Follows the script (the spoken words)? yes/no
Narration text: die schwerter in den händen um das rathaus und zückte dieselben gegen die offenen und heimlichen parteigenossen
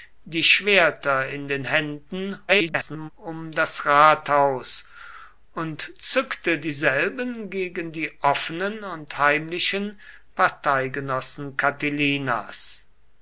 no